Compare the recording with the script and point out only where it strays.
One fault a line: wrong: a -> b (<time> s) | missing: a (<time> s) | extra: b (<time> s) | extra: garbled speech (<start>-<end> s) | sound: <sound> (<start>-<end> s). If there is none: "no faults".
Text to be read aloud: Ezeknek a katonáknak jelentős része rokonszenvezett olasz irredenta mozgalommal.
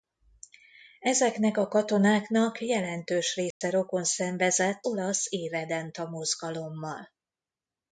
sound: dropout (3.5-3.6 s)